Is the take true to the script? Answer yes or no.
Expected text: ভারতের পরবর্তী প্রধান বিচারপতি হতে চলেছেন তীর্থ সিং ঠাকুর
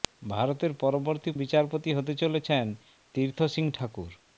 no